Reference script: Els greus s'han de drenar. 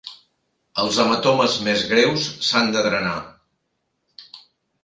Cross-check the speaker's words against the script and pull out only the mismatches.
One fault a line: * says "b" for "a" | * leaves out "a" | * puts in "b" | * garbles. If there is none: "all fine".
* puts in "hematomes més"